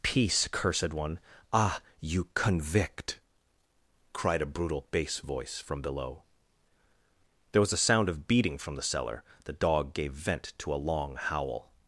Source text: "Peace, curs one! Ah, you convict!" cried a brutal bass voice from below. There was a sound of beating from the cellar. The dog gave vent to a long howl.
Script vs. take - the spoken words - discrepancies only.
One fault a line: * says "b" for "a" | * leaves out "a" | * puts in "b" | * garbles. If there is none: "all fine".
* says "cursed" for "curs"